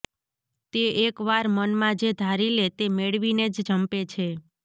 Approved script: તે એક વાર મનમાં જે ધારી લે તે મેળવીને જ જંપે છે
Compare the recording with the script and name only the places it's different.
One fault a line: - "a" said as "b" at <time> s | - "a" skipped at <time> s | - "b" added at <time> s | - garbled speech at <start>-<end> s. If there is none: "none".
none